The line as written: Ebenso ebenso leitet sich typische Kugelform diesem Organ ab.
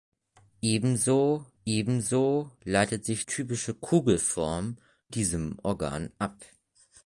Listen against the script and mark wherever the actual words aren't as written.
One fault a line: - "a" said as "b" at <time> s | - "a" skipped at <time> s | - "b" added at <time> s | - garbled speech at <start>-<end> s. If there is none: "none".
none